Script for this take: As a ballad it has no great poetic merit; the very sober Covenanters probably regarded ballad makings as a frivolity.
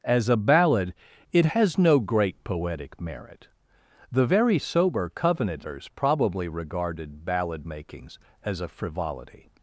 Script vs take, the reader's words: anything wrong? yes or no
no